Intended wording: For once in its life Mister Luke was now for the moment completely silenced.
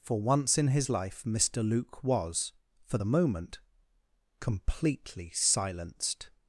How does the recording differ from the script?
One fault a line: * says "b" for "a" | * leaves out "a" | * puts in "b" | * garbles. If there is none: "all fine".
* says "his" for "its"
* leaves out "now"